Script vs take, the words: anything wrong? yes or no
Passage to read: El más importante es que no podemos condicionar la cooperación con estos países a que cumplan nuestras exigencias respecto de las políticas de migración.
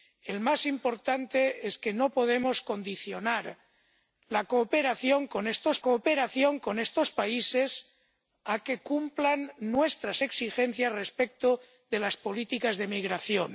yes